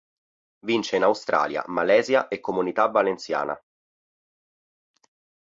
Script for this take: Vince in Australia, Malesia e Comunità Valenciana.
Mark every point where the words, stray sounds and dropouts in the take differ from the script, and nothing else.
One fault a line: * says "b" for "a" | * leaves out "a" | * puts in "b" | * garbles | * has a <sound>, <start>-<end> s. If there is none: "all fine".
all fine